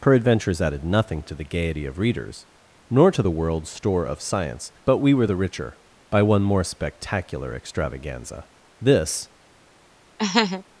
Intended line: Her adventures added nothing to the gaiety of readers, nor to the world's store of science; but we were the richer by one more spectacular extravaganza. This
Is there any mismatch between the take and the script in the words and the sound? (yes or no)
yes